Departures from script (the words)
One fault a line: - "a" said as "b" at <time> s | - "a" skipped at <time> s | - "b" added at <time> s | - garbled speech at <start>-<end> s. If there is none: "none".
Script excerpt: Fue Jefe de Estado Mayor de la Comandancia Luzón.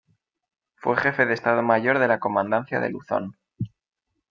- "de" added at 2.8 s